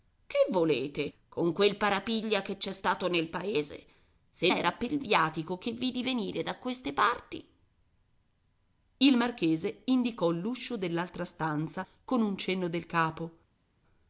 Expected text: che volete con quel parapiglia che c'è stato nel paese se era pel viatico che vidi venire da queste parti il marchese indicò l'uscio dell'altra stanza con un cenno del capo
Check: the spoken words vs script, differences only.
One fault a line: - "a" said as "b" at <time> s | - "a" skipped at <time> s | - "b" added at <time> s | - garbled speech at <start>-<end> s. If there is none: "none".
none